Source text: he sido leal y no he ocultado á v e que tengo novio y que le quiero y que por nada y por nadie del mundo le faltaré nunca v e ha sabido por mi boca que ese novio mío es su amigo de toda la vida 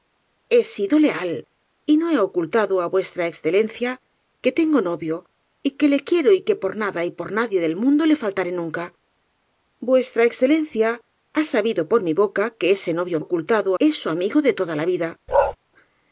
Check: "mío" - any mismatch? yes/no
yes